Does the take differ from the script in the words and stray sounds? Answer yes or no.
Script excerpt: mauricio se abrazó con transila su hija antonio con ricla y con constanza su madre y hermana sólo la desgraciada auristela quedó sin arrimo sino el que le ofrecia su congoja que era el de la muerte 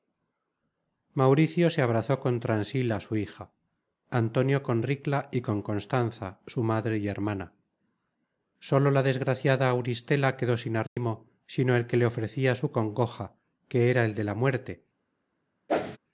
yes